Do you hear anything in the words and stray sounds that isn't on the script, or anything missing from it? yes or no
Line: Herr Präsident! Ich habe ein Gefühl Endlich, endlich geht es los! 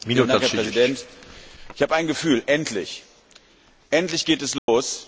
yes